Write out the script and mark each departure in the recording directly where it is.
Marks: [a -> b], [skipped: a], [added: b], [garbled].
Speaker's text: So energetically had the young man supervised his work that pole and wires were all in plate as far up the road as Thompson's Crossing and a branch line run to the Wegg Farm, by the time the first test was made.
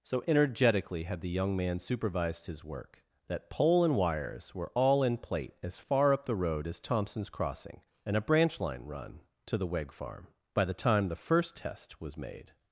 So energetically had the young man supervised his work that pole and wires were all in plate as far up the road as Thompson's Crossing and a branch line run to the Wegg Farm, by the time the first test was made.